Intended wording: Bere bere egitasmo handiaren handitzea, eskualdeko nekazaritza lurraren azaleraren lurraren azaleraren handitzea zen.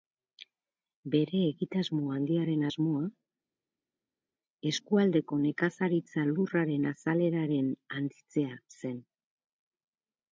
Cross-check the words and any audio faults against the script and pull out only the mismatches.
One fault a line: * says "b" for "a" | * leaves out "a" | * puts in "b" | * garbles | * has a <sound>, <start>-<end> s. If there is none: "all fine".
* leaves out "bere"
* says "asmoa" for "handitzea"
* leaves out "lurraren azaleraren"